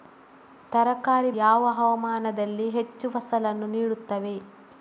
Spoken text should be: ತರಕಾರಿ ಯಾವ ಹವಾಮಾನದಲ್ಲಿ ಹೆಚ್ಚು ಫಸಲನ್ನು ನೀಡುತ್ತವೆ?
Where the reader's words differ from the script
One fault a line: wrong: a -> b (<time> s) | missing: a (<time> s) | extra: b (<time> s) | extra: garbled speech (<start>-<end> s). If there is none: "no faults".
no faults